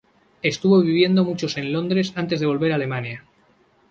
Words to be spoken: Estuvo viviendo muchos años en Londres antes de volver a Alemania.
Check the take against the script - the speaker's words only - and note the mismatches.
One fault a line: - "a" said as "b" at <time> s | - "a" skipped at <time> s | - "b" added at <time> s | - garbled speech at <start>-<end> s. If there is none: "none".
- "años" skipped at 1.6 s